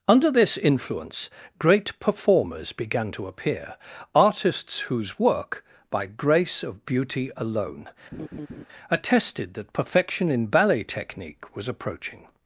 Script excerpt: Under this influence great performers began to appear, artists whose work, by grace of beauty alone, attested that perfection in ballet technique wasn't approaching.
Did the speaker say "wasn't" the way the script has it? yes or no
no